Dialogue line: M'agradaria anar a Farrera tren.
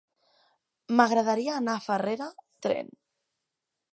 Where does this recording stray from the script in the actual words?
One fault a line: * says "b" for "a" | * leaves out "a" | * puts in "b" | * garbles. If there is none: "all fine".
all fine